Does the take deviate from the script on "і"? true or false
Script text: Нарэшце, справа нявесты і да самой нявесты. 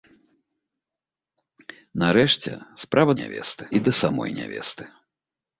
false